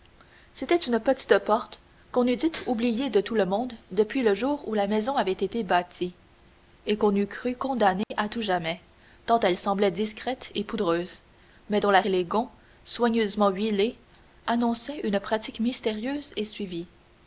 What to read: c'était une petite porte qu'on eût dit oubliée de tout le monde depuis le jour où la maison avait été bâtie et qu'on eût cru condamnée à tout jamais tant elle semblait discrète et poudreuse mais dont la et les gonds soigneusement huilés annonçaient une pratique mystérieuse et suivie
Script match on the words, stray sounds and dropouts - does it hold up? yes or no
no